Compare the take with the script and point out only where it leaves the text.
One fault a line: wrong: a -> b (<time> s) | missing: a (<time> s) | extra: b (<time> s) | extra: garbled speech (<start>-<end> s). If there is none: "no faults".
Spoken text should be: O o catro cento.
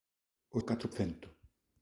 no faults